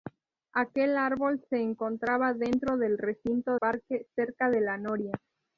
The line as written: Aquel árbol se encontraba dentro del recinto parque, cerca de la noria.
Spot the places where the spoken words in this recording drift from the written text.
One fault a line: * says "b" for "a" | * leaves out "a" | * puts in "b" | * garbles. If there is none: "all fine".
all fine